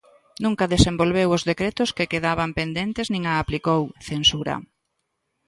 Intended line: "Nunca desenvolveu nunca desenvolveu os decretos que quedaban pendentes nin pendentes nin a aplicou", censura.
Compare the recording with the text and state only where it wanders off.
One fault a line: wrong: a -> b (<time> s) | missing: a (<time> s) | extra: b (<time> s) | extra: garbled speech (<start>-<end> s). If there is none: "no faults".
missing: nunca desenvolveu (1.3 s)
missing: pendentes nin (3.2 s)